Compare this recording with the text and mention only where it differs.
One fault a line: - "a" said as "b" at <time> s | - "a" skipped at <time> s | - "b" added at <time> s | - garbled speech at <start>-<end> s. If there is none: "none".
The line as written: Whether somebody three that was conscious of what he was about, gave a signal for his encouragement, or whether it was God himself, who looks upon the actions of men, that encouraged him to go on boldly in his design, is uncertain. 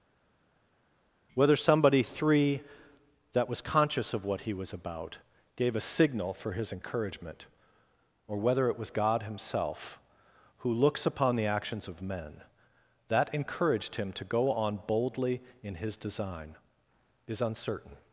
none